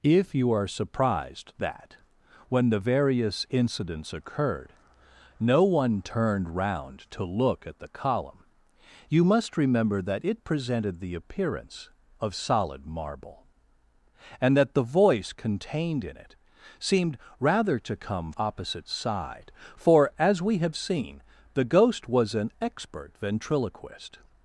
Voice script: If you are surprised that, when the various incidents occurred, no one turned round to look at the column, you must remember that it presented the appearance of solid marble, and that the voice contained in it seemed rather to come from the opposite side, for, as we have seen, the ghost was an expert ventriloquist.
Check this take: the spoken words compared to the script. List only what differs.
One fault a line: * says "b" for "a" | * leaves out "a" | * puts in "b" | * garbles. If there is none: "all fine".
* leaves out "from the"